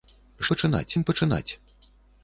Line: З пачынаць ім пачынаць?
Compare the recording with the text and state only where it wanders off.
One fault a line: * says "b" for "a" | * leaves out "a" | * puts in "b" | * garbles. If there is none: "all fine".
all fine